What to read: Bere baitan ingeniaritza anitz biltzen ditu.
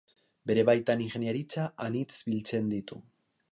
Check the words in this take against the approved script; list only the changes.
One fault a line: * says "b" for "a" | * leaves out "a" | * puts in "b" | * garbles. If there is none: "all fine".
all fine